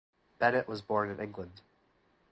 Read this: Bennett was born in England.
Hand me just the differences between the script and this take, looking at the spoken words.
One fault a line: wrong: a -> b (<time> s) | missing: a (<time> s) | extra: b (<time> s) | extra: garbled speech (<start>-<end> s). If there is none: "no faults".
no faults